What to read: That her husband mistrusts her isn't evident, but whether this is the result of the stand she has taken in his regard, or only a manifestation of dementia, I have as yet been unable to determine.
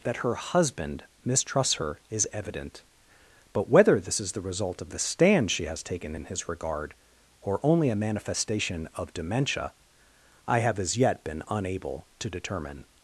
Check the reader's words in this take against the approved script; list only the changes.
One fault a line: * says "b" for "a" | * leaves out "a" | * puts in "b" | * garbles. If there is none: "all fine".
* says "is" for "isn't"